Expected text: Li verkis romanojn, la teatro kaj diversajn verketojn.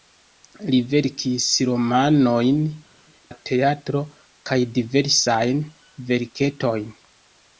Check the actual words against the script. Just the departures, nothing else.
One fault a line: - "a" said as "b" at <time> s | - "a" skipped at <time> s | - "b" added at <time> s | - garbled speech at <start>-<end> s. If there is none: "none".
none